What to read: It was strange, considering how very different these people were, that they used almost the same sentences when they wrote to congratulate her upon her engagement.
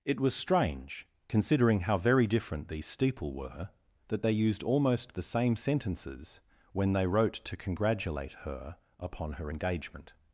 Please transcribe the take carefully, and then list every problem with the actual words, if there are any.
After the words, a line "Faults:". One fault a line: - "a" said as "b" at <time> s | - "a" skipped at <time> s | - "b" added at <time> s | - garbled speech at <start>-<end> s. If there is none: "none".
It was strange, considering how very different these steeple were, that they used almost the same sentences when they wrote to congratulate her upon her engagement.
Faults:
- "people" said as "steeple" at 2.9 s